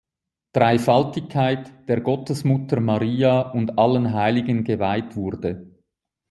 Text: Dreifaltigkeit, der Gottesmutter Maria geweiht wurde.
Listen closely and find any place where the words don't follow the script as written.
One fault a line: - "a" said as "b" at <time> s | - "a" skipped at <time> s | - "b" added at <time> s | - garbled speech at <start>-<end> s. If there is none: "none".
- "und allen Heiligen" added at 3.5 s